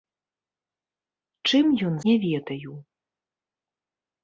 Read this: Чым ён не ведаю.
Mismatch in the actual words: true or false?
false